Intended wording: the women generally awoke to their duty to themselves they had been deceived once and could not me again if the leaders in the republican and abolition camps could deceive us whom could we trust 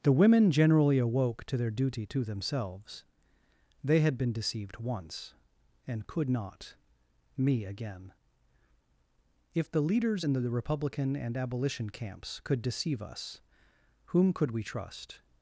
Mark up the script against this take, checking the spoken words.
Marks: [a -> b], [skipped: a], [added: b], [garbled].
the women generally awoke to their duty to themselves they had been deceived once and could not me again if the leaders in the republican and abolition camps could deceive us whom could we trust